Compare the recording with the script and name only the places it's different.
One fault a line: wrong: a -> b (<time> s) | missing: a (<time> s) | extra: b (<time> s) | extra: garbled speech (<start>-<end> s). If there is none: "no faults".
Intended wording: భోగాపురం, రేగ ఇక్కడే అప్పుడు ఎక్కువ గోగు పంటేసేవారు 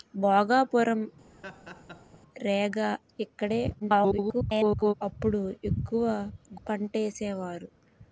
extra: garbled speech (3.8-4.9 s)
missing: గోగు (6.0 s)